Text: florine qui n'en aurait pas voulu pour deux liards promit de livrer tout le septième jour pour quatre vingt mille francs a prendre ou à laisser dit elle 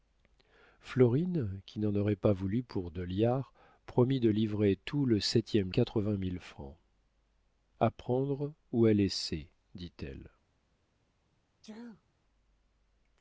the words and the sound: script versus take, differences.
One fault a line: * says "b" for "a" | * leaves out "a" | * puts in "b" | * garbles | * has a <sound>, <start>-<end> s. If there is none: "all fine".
* leaves out "jour pour"
* has a sneeze, 11.6-12.0 s